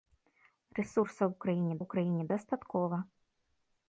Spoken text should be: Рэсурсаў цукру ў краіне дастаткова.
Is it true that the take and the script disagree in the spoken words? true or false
true